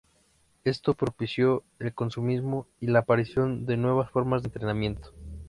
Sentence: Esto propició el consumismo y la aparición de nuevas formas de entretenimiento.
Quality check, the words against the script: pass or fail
pass